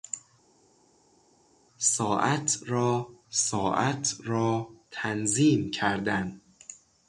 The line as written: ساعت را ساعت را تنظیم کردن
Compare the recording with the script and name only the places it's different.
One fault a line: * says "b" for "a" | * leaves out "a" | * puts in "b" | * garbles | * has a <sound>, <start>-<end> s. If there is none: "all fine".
all fine